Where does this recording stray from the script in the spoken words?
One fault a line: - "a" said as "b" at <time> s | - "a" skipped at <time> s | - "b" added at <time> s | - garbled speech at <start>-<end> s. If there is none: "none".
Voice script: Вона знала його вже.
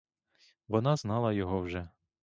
none